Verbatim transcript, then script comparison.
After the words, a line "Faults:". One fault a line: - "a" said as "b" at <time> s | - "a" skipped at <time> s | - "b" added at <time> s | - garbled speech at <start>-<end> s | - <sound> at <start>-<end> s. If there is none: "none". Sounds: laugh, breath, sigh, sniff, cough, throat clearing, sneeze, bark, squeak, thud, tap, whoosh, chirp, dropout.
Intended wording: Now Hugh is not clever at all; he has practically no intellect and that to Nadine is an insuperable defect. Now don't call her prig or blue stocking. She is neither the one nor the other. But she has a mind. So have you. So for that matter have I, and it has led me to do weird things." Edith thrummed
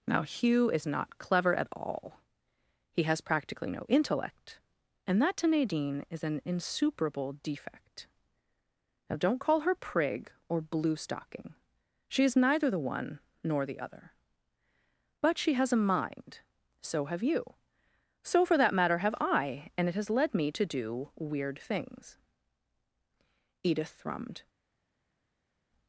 Now Hugh is not clever at all; he has practically no intellect and that to Nadine is an insuperable defect. Now don't call her prig or blue stocking. She is neither the one nor the other. But she has a mind. So have you. So for that matter have I, and it has led me to do weird things." Edith thrummed
Faults:
none